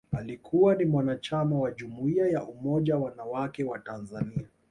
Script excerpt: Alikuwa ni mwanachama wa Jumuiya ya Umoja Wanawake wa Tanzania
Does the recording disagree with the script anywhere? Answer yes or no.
no